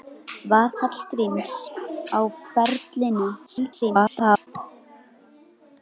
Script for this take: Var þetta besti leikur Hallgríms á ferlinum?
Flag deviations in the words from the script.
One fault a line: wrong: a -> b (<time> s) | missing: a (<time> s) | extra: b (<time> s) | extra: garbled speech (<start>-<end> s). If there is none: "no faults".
missing: þetta besti leikur (0.7 s)
extra: garbled speech (3.5-4.5 s)